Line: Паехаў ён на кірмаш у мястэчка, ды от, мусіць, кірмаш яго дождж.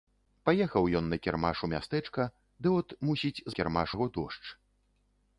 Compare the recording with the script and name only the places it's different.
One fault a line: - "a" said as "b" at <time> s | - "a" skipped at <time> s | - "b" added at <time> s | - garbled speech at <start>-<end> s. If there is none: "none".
none